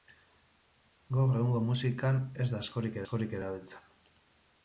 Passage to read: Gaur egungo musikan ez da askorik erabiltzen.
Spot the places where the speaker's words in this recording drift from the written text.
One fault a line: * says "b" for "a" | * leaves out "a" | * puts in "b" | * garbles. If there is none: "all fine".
* puts in "askorik"